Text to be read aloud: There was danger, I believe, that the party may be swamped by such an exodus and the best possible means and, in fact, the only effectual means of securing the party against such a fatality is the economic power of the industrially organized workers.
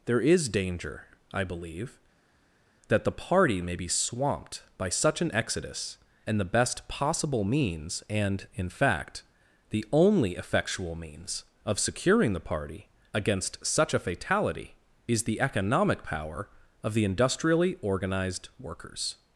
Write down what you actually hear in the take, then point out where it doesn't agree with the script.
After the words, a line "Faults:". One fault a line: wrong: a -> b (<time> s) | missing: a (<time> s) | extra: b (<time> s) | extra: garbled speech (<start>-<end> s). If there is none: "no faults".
There is danger, I believe, that the party may be swamped by such an exodus and the best possible means and, in fact, the only effectual means of securing the party against such a fatality is the economic power of the industrially organized workers.
Faults:
wrong: was -> is (0.2 s)